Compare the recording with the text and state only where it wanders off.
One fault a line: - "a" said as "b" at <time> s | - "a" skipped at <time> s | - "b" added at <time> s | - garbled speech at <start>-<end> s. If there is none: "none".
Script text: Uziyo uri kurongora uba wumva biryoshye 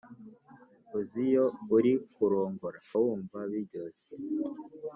- "uba" skipped at 2.8 s